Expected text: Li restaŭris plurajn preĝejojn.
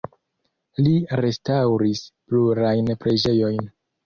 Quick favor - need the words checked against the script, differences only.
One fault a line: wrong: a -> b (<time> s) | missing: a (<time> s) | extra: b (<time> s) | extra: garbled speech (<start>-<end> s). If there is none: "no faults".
no faults